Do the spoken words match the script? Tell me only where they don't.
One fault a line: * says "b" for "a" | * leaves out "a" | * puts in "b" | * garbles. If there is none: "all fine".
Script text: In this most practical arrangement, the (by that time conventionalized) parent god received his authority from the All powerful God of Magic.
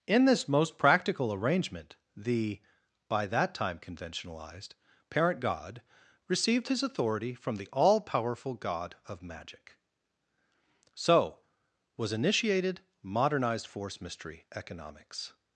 * puts in "So was initiated modernized force mystery economics"